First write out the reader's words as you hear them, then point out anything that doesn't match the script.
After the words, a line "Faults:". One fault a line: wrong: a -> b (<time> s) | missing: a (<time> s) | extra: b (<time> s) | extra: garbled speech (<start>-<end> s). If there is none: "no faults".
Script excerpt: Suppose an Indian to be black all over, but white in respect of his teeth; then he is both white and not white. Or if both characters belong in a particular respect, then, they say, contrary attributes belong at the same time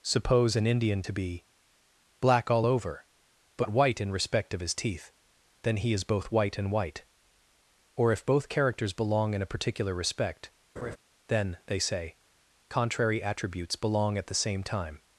Suppose an Indian to be black all over, but white in respect of his teeth; then he is both white and white. Or if both characters belong in a particular respect, then, they say, contrary attributes belong at the same time
Faults:
missing: not (6.7 s)